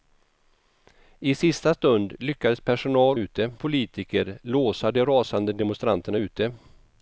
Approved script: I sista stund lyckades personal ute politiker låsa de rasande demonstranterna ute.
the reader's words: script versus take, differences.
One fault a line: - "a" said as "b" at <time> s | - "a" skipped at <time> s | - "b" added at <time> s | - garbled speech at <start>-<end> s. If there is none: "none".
none